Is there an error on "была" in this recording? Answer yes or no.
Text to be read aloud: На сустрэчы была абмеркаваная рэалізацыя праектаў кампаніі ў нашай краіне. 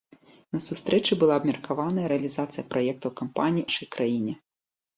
no